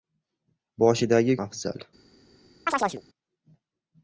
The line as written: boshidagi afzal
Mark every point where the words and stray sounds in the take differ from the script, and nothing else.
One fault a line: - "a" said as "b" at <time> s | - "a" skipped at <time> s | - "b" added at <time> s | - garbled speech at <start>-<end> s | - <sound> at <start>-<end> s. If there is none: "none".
- chirp at 2.7-3.0 s